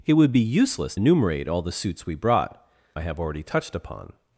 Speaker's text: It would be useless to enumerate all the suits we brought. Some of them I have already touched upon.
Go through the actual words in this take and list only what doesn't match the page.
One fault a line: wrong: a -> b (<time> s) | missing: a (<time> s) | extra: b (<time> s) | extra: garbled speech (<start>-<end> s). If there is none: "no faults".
missing: to (0.9 s)
missing: Some of them (2.7 s)